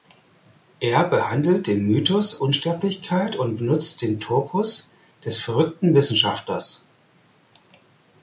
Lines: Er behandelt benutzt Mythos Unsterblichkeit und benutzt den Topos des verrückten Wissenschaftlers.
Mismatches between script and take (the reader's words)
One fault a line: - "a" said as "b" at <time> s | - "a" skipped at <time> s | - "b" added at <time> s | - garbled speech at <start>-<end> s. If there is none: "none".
- "benutzt" said as "den" at 1.7 s